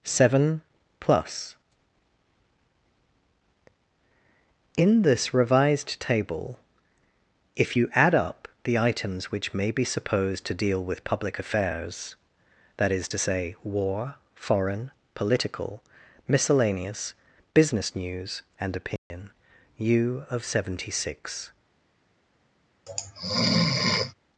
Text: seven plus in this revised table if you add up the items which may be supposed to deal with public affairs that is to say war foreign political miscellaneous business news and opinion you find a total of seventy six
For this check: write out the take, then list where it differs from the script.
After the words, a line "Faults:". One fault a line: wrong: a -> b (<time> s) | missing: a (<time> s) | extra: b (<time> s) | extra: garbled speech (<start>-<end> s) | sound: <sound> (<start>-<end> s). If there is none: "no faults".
seven plus in this revised table if you add up the items which may be supposed to deal with public affairs that is to say war foreign political miscellaneous business news and opinion you of seventy six
Faults:
sound: dropout (19.0-19.1 s)
missing: find a total (20.3 s)
sound: sneeze (22.9-24.1 s)